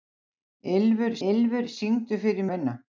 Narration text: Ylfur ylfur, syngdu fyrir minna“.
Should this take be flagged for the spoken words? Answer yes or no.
no